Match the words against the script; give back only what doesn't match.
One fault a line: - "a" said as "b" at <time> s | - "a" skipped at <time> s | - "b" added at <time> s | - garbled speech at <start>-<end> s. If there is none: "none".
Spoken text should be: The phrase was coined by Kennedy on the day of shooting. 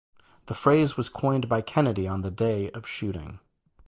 none